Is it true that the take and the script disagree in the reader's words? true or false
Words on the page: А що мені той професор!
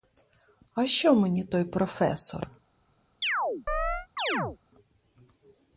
false